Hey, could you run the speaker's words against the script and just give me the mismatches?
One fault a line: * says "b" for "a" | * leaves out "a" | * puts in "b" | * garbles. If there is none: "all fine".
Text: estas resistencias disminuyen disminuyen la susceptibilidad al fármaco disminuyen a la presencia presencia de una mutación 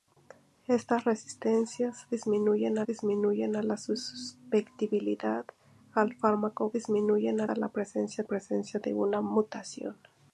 all fine